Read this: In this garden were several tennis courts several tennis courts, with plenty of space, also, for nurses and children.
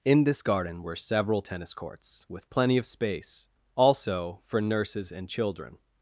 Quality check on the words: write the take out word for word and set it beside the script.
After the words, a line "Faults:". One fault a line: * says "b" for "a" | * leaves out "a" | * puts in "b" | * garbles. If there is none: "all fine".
In this garden were several tennis courts, with plenty of space, also, for nurses and children.
Faults:
* leaves out "several tennis courts"